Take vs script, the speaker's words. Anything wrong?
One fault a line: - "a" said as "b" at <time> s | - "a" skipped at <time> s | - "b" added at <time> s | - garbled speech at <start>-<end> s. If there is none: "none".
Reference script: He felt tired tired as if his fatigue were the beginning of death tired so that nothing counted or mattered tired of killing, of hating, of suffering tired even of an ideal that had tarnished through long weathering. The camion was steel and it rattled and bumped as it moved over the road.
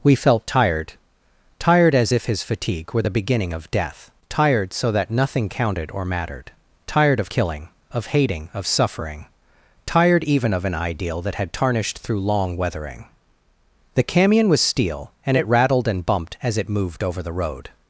- "He" said as "We" at 0.0 s